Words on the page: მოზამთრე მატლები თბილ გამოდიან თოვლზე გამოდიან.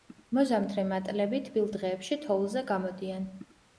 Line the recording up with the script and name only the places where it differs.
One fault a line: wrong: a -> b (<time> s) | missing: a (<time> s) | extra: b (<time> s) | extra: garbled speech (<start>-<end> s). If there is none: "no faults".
wrong: გამოდიან -> დღეებში (1.7 s)